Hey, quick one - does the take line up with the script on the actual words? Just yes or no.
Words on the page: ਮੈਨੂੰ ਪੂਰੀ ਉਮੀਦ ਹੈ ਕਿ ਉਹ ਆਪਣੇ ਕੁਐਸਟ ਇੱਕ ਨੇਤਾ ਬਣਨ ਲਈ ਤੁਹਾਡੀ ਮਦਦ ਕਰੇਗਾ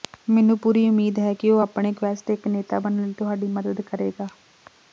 yes